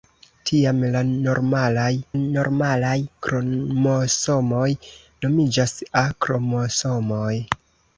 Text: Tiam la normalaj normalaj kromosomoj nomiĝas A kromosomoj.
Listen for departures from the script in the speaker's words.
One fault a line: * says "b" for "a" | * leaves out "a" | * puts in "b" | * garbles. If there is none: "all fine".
all fine